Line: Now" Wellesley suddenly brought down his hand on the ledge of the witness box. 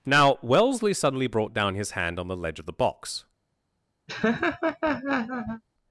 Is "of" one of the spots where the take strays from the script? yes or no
no